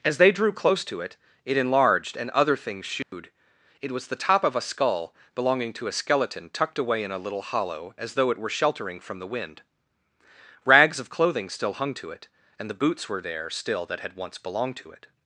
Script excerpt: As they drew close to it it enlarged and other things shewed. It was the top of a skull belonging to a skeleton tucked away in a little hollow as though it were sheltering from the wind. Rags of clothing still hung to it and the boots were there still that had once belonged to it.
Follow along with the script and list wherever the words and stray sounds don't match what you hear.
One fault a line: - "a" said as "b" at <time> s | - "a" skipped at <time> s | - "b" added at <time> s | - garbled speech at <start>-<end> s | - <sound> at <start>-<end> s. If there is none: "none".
- dropout at 3.0-3.1 s